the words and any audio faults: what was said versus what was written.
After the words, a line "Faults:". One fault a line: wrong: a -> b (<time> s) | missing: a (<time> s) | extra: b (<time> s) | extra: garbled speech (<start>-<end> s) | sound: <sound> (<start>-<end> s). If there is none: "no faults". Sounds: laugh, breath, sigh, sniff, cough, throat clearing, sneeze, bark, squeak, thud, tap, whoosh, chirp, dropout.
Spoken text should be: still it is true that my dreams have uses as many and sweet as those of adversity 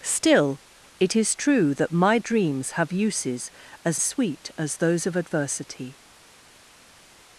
still it is true that my dreams have uses as sweet as those of adversity
Faults:
missing: many and (4.0 s)